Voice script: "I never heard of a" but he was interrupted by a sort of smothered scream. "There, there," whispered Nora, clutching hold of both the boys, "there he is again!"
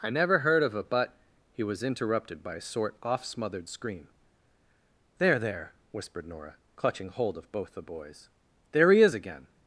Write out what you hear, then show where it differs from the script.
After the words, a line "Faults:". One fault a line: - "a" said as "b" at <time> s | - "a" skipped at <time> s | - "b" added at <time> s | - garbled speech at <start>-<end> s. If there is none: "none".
"I never heard of a" but he was interrupted by a sort off smothered scream. "There, there," whispered Nora, clutching hold of both the boys, "there he is again!"
Faults:
- "of" said as "off" at 3.0 s